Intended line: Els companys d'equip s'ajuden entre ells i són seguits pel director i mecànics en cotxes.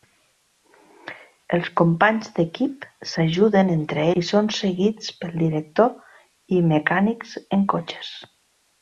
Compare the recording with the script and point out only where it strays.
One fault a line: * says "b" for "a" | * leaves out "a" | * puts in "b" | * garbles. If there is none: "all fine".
* leaves out "ells"